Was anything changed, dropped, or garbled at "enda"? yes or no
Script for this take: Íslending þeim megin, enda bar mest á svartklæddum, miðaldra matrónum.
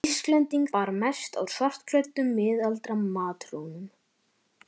yes